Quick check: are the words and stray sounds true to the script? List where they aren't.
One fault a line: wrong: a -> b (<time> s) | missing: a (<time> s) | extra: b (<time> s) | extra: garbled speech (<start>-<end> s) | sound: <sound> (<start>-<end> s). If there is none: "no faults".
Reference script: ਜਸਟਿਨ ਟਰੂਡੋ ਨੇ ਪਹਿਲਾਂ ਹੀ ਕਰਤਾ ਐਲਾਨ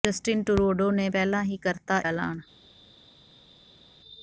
no faults